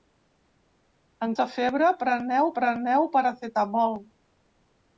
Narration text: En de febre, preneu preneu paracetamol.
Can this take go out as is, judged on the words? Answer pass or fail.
pass